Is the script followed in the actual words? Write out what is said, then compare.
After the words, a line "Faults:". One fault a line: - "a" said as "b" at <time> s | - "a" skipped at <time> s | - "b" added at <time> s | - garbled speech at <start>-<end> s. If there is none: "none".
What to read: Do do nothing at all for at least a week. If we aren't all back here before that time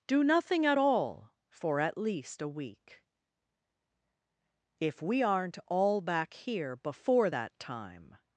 Do nothing at all for at least a week. If we aren't all back here before that time
Faults:
- "do" skipped at 0.2 s